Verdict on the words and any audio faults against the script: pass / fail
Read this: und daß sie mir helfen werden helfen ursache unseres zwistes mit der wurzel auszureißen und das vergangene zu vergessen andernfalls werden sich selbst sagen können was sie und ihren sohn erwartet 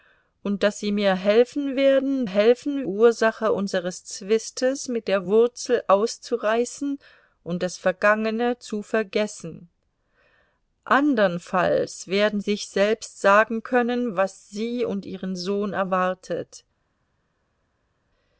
pass